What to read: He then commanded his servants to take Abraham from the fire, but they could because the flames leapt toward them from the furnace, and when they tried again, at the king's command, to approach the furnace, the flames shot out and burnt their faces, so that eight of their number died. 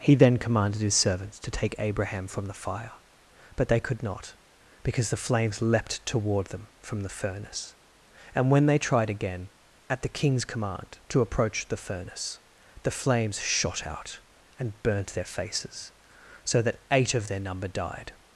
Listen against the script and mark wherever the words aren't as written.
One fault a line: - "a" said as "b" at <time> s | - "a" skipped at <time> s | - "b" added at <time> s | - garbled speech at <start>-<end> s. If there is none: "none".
- "not" added at 4.0 s